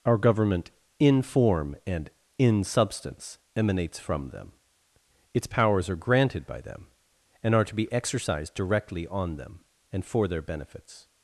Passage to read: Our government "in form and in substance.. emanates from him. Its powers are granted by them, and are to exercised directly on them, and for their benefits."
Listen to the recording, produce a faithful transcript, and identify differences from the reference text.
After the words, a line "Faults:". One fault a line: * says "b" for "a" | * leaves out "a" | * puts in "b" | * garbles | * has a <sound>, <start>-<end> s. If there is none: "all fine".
Our government "in form and in substance.. emanates from them. Its powers are granted by them, and are to be exercised directly on them, and for their benefits."
Faults:
* says "them" for "him"
* puts in "be"